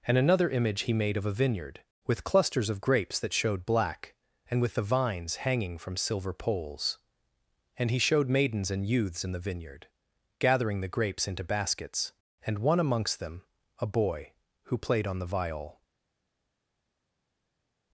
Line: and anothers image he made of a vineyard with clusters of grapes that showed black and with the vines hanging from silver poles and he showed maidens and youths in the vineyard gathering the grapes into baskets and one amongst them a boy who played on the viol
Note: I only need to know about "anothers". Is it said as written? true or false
false